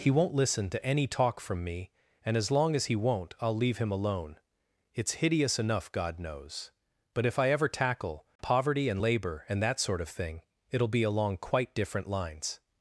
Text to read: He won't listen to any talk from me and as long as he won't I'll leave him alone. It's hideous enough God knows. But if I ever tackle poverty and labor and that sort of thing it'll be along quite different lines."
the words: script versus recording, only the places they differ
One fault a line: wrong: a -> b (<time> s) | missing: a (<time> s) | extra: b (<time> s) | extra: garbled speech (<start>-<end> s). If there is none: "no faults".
no faults